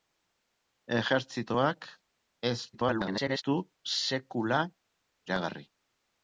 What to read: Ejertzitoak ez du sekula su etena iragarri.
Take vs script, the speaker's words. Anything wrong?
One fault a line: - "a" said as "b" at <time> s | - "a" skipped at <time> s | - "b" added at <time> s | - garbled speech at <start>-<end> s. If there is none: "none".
- garbled speech at 2.7-3.4 s
- "su etena" skipped at 4.6 s